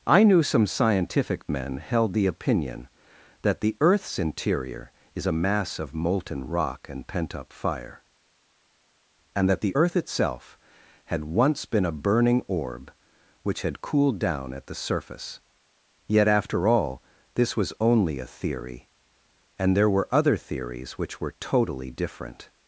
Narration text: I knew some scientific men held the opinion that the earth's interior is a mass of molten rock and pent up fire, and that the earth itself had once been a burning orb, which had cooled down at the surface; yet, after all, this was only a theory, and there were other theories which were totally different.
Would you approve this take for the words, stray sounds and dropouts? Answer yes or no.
yes